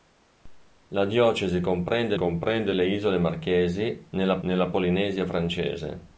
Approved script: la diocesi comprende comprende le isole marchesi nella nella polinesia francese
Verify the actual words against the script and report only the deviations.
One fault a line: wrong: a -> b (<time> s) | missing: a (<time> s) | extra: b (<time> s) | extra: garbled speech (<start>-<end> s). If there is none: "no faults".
no faults